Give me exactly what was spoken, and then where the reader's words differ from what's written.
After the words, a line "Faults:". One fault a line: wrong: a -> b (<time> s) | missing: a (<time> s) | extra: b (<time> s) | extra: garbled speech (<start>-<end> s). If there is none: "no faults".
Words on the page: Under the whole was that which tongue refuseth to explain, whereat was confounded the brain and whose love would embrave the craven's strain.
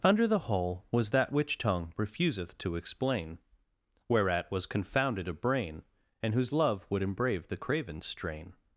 Under the whole was that which tongue refuseth to explain, whereat was confounded a brain and whose love would embrave the craven's strain.
Faults:
wrong: the -> a (5.3 s)